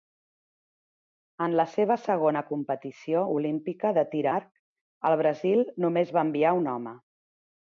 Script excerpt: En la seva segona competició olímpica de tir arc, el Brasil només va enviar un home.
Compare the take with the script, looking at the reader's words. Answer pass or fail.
pass